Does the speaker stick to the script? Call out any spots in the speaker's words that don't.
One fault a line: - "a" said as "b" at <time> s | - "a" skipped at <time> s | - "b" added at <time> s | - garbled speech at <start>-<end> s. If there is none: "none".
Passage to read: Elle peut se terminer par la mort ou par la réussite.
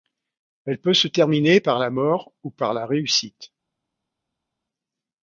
none